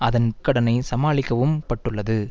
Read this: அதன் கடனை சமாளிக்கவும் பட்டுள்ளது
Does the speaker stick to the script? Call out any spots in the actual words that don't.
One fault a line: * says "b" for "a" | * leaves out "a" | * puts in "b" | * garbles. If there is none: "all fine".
all fine